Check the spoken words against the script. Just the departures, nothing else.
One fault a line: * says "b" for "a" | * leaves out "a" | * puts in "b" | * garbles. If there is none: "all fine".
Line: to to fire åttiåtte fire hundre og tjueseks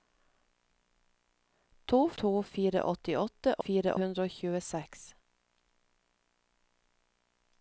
all fine